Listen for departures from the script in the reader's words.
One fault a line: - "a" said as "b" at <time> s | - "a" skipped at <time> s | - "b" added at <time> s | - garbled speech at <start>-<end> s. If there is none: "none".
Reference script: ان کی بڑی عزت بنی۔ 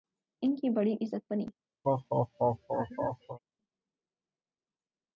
none